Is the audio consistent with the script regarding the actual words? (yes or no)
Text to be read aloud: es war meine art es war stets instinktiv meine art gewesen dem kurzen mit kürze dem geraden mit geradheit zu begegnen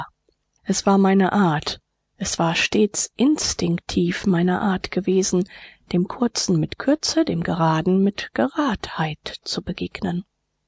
yes